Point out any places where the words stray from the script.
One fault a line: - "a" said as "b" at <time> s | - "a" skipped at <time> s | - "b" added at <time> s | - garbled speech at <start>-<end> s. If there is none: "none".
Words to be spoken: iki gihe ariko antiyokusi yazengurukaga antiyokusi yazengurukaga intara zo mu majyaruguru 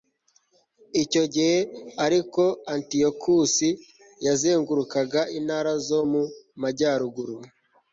- "iki" said as "icyo" at 1.0 s
- "antiyokusi yazengurukaga" skipped at 5.2 s